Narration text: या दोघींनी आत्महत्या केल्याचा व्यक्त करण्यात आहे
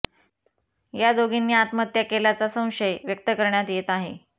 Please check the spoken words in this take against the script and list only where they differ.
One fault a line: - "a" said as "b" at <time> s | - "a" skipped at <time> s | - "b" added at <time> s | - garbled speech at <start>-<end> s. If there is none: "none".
- "संशय" added at 2.5 s
- "येत" added at 3.7 s